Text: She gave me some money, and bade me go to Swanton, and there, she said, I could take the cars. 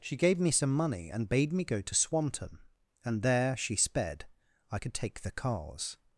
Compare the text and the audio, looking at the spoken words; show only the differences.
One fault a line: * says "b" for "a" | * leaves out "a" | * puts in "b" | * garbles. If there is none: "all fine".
* says "sped" for "said"